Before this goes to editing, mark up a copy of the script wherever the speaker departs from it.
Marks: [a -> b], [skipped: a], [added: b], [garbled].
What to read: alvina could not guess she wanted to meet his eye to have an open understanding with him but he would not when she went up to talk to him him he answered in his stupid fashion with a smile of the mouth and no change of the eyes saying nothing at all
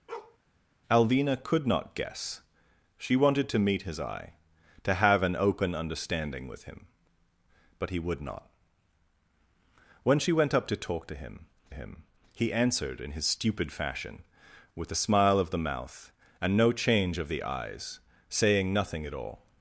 alvina could not guess she wanted to meet his eye to have an open understanding with him but he would not when she went up to talk to him him he answered in his stupid fashion with a smile of the mouth and no change of the eyes saying nothing at all